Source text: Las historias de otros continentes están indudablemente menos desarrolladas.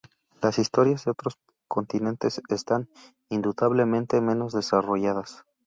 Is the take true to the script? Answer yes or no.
yes